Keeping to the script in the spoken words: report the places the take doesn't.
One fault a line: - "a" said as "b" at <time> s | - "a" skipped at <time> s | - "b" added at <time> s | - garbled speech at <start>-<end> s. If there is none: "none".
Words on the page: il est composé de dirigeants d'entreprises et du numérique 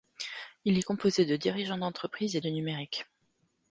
none